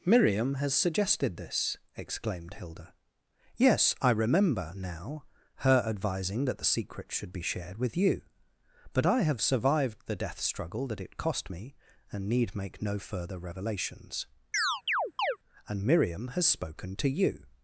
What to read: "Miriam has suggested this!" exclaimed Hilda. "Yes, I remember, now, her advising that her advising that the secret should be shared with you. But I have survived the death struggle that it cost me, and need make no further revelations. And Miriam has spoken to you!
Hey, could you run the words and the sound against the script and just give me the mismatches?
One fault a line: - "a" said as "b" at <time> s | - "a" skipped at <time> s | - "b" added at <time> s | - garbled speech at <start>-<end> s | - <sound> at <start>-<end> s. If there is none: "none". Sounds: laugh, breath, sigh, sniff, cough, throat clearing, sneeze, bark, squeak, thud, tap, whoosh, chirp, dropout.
- "her advising that" skipped at 6.6 s
- chirp at 14.5-15.4 s